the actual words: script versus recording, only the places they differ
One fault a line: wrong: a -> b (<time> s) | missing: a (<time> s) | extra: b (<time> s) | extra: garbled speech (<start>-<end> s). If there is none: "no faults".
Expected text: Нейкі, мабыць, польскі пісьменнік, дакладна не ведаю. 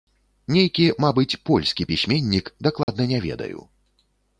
no faults